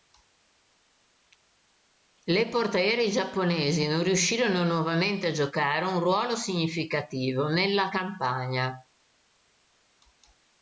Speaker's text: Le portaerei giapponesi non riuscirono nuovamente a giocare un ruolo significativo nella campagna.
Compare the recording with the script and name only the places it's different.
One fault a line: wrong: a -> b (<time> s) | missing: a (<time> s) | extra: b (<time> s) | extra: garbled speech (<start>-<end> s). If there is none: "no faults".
no faults